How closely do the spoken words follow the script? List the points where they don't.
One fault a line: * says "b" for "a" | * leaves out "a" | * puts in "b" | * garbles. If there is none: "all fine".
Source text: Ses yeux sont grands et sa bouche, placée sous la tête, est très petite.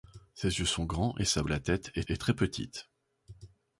* leaves out "bouche placée sous"
* puts in "est"